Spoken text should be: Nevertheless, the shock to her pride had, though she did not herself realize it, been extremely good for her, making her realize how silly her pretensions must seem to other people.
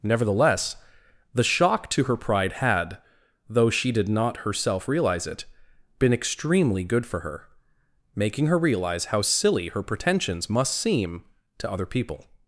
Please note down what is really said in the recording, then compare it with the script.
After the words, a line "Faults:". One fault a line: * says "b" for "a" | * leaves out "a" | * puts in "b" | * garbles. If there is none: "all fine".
Nevertheless, the shock to her pride had, though she did not herself realize it, been extremely good for her, making her realize how silly her pretensions must seem to other people.
Faults:
all fine